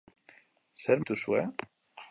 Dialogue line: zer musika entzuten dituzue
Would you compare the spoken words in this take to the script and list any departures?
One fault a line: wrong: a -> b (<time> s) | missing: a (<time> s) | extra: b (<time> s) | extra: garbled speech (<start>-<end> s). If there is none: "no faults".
missing: musika entzuten (1.0 s)